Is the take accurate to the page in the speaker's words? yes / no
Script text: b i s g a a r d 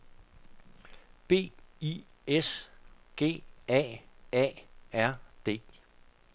yes